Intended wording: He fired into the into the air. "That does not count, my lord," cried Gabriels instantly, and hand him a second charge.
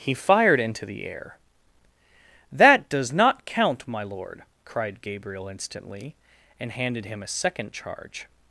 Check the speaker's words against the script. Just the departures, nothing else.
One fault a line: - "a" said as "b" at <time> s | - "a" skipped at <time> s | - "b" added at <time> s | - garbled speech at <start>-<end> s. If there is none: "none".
- "into the" skipped at 1.1 s
- "Gabriels" said as "Gabriel" at 5.0 s
- "hand" said as "handed" at 6.7 s